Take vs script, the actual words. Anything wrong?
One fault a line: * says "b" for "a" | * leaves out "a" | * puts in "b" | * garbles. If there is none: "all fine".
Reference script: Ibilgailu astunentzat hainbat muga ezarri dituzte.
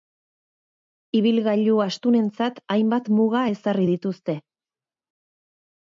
all fine